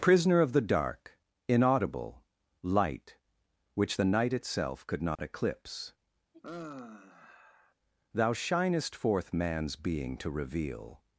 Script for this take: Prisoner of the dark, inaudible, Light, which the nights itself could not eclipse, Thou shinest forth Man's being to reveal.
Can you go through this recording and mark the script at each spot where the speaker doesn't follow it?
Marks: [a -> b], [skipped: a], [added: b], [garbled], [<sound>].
Prisoner of the dark, inaudible, Light, which the [nights -> night] itself could not [dropout] eclipse, [sigh] Thou shinest forth Man's being to reveal.